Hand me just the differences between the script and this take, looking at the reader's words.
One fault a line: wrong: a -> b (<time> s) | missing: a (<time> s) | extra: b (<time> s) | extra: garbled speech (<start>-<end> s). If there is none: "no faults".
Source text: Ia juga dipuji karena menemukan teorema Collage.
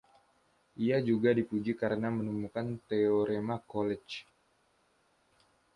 no faults